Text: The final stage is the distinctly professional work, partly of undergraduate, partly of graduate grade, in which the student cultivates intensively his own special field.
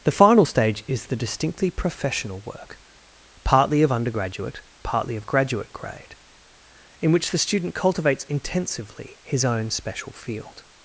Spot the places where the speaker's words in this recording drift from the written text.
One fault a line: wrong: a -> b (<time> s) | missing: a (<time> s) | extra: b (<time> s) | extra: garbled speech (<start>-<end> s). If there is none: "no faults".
no faults